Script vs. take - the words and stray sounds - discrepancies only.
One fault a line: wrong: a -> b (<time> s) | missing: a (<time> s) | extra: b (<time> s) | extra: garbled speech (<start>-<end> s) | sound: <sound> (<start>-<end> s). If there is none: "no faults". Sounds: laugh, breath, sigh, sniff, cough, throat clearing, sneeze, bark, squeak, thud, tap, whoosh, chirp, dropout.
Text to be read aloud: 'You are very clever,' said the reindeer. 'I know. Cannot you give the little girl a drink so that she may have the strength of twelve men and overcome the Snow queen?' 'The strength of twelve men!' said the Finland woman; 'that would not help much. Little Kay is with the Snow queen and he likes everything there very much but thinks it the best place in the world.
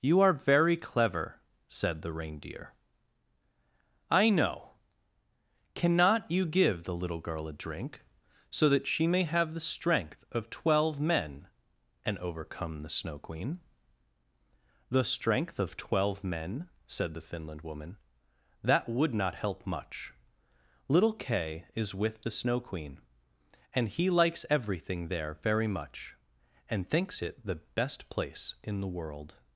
wrong: but -> and (26.7 s)